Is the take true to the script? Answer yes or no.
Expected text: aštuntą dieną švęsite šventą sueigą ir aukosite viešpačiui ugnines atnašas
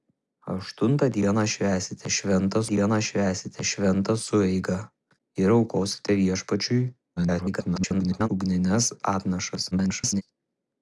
no